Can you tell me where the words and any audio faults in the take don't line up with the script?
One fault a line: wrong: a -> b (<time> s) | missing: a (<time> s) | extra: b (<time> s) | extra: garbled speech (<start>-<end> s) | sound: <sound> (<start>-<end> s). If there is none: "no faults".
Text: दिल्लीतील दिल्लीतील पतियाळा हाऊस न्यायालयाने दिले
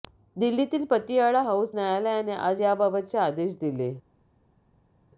missing: दिल्लीतील (0.9 s)
extra: आज याबाबतचे आदेश (2.3 s)